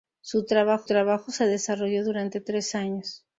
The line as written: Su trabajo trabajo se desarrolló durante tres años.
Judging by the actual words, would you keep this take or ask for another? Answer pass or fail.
pass